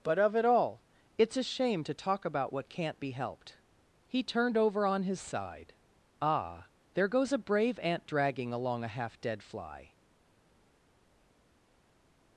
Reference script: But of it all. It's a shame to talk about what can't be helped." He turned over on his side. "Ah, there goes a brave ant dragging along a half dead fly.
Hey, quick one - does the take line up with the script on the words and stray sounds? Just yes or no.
yes